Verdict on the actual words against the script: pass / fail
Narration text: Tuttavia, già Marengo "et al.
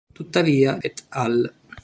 fail